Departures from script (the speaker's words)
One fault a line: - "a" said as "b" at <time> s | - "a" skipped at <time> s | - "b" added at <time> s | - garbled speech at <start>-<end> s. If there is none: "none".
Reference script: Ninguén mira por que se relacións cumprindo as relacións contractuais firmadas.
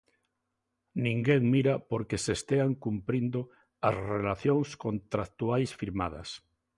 - "relacións" said as "estean" at 2.4 s